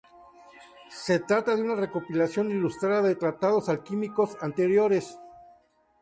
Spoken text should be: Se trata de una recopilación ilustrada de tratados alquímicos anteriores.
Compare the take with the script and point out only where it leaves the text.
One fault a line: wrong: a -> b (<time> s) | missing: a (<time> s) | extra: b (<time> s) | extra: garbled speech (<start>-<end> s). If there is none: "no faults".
no faults